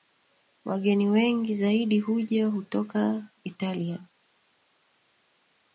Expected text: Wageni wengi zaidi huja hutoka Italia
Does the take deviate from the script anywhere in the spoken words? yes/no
no